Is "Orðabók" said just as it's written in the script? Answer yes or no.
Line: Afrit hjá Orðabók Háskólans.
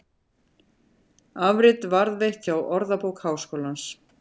yes